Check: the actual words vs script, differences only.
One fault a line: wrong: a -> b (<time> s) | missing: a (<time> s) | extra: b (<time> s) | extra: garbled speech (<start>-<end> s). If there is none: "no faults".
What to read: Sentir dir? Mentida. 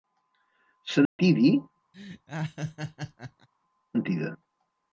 no faults